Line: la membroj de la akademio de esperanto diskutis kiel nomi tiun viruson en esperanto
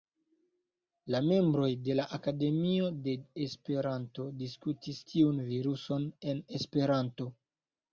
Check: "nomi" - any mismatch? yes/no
yes